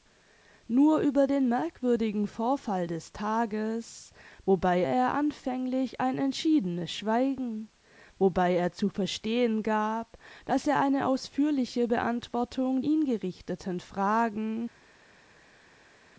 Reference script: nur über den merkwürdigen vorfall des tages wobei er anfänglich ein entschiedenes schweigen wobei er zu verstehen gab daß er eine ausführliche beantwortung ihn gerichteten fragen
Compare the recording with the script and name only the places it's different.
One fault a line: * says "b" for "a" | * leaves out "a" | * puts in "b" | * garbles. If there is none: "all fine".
all fine